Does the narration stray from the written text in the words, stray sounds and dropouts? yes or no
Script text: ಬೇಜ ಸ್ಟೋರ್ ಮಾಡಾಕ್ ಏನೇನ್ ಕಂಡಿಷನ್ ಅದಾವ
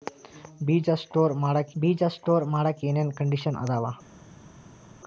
yes